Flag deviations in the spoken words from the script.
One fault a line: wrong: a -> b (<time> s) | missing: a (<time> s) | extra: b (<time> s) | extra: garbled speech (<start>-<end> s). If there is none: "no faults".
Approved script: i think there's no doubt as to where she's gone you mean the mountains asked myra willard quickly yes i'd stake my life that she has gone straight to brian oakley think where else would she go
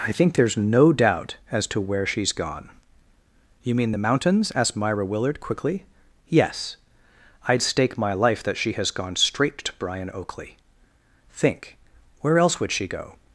no faults